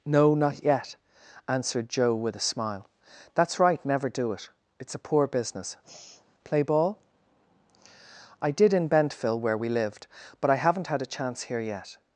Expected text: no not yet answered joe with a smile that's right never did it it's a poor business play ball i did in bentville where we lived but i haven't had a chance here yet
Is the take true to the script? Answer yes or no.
no